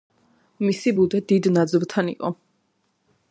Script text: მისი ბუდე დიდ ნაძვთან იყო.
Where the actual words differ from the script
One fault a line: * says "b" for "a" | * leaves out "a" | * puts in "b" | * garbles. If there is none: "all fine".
all fine